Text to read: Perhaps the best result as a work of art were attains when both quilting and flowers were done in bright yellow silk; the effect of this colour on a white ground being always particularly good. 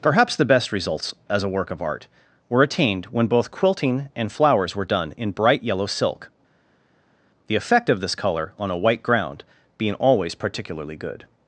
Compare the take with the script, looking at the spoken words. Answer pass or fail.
fail